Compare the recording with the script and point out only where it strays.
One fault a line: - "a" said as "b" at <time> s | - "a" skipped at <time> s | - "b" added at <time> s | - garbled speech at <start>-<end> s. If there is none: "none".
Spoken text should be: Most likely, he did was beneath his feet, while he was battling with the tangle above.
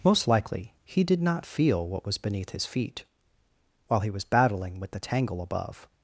- "not feel what" added at 1.2 s